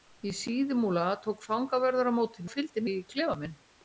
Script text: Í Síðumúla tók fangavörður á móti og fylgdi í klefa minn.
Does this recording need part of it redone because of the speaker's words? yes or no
no